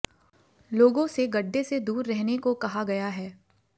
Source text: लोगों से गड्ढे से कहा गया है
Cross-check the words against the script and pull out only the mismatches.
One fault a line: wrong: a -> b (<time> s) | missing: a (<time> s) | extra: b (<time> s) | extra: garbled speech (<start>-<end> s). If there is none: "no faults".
extra: दूर रहने को (1.8 s)